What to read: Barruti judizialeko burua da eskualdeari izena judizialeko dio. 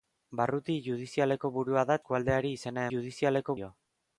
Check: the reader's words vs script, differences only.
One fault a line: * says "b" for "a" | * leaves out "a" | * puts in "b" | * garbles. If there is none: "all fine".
all fine